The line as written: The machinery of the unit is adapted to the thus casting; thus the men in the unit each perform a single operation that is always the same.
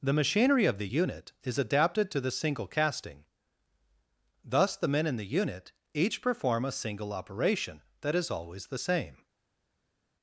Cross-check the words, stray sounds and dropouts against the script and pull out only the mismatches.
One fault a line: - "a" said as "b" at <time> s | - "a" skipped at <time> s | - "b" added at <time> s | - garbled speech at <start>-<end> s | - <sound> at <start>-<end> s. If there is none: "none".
- "thus" said as "single" at 2.3 s